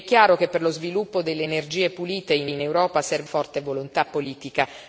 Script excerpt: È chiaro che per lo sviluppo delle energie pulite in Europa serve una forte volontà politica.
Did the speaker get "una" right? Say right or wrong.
wrong